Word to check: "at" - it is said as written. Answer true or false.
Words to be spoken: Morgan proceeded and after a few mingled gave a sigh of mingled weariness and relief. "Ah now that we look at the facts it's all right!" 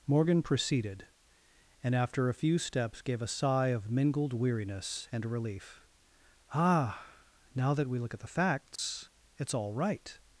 true